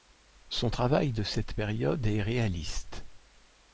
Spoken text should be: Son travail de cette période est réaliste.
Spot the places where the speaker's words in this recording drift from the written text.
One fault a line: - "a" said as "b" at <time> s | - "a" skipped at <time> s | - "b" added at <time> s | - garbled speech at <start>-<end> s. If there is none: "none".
none